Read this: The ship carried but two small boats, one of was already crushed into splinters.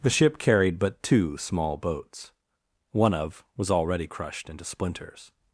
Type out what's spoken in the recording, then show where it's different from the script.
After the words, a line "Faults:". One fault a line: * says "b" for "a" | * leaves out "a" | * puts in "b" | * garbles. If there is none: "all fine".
The ship carried but two small boats, one of was already crushed into splinters.
Faults:
all fine